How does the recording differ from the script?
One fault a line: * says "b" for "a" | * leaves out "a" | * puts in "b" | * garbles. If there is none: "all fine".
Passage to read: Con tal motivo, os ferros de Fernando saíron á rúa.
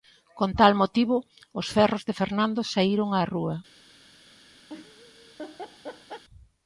all fine